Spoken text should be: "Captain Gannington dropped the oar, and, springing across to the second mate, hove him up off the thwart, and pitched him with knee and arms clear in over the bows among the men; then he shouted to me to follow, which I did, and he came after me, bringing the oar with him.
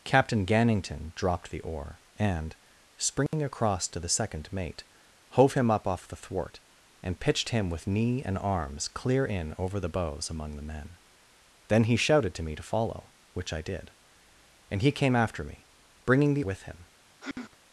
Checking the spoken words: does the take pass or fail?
fail